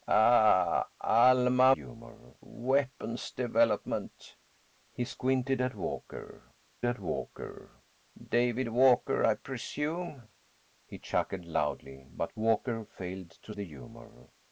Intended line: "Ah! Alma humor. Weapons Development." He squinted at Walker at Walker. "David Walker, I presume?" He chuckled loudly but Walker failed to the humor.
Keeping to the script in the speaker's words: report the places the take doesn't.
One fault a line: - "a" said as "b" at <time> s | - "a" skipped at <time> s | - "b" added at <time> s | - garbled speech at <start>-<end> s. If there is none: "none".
none